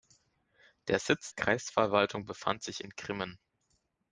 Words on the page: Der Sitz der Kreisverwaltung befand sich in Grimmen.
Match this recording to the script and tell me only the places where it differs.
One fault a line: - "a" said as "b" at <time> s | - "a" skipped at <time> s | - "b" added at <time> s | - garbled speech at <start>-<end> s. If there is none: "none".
- "der" skipped at 1.3 s